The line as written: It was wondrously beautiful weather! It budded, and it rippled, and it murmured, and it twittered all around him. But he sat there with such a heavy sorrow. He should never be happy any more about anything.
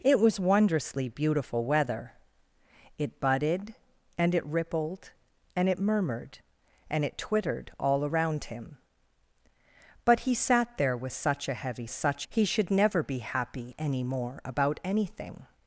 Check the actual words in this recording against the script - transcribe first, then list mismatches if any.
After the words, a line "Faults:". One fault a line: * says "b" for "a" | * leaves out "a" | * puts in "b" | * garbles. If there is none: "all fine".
It was wondrously beautiful weather! It budded, and it rippled, and it murmured, and it twittered all around him. But he sat there with such a heavy such. He should never be happy any more about anything.
Faults:
* says "such" for "sorrow"